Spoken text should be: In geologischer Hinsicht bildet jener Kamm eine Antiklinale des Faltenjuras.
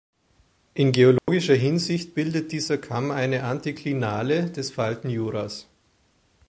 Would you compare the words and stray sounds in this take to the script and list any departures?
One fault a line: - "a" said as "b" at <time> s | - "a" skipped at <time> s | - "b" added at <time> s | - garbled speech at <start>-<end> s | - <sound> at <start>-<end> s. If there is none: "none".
- dropout at 1.2-1.3 s
- "jener" said as "dieser" at 2.5 s